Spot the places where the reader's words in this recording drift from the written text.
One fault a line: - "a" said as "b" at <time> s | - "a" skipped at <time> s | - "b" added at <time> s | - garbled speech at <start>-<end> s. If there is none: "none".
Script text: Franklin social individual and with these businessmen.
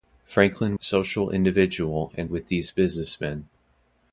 none